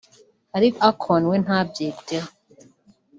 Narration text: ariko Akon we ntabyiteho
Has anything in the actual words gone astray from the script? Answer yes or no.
no